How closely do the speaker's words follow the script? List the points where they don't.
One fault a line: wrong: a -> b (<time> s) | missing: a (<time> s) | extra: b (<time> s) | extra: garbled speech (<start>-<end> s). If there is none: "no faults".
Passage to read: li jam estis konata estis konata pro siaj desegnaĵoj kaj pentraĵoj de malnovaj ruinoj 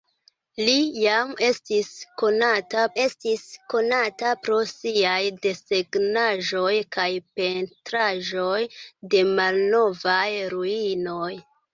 no faults